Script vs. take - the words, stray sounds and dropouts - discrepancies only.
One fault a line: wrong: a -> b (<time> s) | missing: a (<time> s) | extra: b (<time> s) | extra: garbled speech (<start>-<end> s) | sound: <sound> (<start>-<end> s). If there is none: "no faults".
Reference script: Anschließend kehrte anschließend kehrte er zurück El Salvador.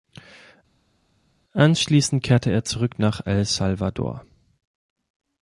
missing: anschließend kehrte (2.5 s)
extra: nach (3.0 s)